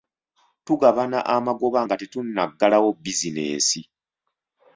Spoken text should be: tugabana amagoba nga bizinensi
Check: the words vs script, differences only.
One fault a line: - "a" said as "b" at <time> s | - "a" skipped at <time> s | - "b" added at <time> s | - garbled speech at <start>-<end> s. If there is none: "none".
- "tetunnaggalawo" added at 2.0 s